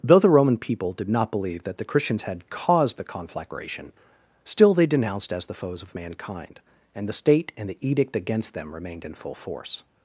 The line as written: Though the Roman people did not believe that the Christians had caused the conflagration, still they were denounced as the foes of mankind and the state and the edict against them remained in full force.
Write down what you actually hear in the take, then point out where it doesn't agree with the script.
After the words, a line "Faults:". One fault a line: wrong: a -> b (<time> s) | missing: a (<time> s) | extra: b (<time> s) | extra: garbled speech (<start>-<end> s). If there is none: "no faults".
Though the Roman people did not believe that the Christians had caused the conflagration, still they denounced as the foes of mankind and the state and the edict against them remained in full force.
Faults:
missing: were (4.9 s)